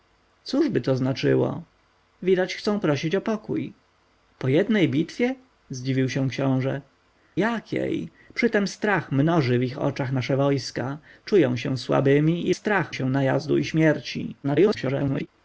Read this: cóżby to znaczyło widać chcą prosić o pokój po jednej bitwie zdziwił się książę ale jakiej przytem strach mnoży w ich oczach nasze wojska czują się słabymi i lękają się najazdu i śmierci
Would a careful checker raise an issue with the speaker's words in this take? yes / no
yes